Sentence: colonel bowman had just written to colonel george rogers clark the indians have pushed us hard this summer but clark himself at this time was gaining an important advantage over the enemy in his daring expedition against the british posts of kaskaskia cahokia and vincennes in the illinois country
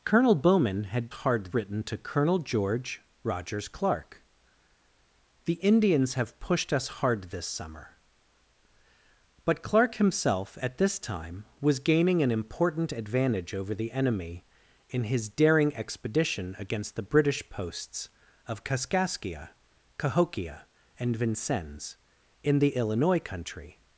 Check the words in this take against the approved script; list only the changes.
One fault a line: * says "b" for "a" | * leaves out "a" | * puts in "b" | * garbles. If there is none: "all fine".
* says "hard" for "just"